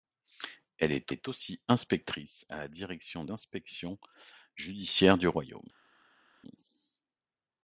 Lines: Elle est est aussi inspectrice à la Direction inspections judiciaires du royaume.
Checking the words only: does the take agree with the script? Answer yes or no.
yes